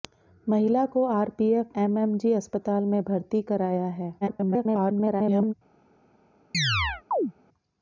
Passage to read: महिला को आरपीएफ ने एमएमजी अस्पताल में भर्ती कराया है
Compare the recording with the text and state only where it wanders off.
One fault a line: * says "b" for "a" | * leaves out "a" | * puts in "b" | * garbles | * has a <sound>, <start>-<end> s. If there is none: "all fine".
* leaves out "ने"
* garbles
* has a chirp, 6.5-7.3 s